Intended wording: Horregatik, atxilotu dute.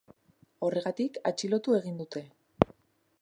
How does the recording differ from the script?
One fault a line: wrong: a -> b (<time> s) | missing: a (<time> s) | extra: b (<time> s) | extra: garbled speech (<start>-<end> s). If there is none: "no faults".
extra: egin (1.8 s)